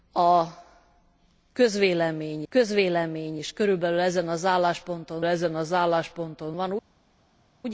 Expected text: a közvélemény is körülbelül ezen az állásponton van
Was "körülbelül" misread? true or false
false